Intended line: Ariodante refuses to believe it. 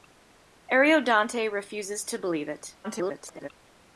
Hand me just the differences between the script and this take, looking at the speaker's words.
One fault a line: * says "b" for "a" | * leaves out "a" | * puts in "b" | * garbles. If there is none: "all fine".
* garbles